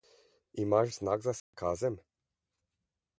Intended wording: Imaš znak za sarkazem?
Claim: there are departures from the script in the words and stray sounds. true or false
true